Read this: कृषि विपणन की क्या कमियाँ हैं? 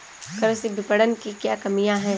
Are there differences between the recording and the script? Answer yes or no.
no